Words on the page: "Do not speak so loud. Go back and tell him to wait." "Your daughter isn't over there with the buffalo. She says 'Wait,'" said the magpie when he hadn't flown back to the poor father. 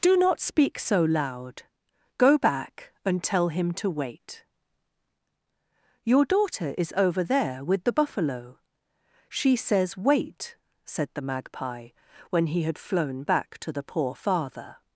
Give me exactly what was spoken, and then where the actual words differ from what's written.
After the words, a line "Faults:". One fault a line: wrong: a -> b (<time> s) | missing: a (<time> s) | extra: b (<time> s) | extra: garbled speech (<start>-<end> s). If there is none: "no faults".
"Do not speak so loud. Go back and tell him to wait." "Your daughter is over there with the buffalo. She says 'Wait,'" said the magpie when he had flown back to the poor father.
Faults:
wrong: isn't -> is (6.8 s)
wrong: hadn't -> had (12.6 s)